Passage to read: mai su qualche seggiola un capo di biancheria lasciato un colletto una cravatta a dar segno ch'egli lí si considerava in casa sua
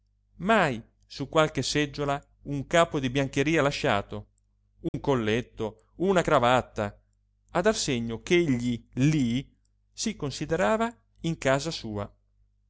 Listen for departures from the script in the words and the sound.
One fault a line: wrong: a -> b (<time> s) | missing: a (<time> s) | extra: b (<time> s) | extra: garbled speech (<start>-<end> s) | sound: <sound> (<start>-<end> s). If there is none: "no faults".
sound: dropout (4.9-4.9 s)